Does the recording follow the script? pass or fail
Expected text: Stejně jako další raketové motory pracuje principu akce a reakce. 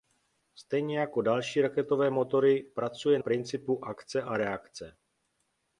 pass